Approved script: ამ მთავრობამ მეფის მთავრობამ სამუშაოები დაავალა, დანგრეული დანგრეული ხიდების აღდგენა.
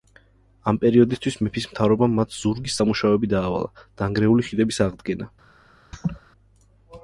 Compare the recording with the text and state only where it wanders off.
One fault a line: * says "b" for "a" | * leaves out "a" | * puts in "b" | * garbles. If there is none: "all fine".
* says "პერიოდისთვის" for "მთავრობამ"
* puts in "მათ ზურგის"
* leaves out "დანგრეული"